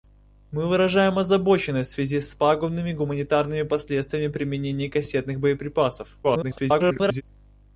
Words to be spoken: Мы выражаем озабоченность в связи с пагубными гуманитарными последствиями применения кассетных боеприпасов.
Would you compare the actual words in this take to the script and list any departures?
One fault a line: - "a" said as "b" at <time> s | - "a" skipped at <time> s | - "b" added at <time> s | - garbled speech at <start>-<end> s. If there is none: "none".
- garbled speech at 6.2-7.2 s